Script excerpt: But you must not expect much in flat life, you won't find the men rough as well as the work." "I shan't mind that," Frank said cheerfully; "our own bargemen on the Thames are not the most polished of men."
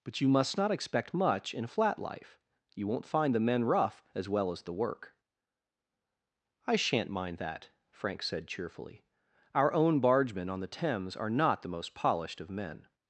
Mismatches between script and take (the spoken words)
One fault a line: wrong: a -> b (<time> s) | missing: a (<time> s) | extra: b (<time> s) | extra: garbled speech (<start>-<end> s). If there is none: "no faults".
no faults